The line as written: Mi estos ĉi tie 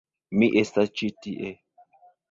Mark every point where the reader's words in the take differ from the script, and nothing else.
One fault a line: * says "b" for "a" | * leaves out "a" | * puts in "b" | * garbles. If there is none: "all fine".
* says "estas" for "estos"